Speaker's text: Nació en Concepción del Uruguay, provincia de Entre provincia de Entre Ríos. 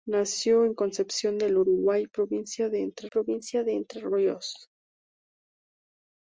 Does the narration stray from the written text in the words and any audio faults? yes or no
no